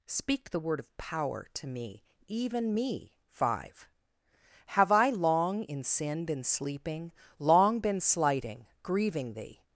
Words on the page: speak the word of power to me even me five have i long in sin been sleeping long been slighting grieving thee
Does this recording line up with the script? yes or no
yes